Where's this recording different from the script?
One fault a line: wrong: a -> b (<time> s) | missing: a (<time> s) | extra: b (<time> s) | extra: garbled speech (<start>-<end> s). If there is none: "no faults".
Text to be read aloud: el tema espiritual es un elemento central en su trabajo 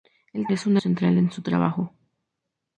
missing: tema espiritual (0.5 s)
missing: elemento (0.8 s)